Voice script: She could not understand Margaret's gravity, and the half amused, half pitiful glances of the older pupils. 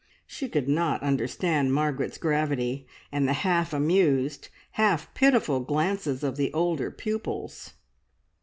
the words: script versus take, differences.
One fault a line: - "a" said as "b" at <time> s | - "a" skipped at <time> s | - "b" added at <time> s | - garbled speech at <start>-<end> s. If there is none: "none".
none